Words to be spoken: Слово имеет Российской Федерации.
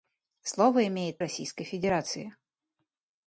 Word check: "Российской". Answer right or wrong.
right